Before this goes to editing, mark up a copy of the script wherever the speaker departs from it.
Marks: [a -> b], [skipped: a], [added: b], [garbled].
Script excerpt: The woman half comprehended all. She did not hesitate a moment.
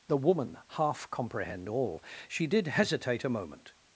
The woman half [comprehended -> comprehend] all. She did [skipped: not] hesitate a moment.